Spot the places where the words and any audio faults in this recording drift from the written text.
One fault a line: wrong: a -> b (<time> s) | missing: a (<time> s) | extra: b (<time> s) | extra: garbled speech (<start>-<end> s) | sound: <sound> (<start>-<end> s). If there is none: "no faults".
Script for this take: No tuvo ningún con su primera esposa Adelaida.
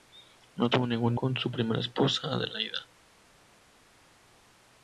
no faults